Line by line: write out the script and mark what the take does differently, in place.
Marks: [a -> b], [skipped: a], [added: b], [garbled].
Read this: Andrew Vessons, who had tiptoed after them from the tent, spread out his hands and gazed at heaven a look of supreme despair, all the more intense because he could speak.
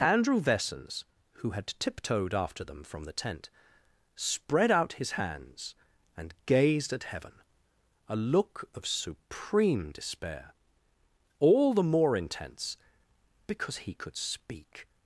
Andrew Vessons, who had tiptoed after them from the tent, spread out his hands and gazed at heaven a look of supreme despair, all the more intense because he could speak.